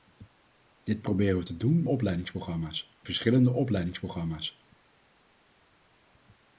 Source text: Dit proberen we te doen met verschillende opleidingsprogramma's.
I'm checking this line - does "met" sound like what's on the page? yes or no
no